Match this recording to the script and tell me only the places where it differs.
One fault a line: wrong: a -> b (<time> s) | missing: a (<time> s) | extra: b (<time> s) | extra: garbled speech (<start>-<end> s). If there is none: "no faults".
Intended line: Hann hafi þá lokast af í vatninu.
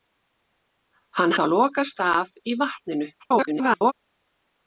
missing: hafi (1.4 s)
extra: garbled speech (3.2-3.9 s)